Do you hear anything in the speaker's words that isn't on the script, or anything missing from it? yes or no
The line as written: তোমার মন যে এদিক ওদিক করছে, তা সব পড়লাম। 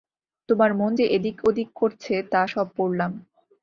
no